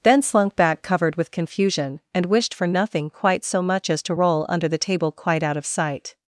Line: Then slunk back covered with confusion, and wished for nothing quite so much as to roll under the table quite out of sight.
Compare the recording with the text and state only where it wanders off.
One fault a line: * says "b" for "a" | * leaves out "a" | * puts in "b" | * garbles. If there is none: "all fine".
all fine